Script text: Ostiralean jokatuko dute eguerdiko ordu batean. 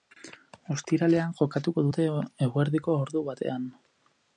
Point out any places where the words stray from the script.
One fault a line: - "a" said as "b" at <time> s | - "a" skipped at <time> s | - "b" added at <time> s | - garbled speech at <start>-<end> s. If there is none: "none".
none